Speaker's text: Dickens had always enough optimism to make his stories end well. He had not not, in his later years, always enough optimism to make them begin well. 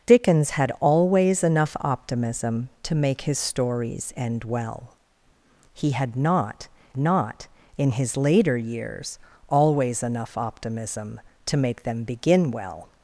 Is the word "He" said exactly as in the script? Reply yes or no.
yes